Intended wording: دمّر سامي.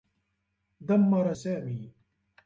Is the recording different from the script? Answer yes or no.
no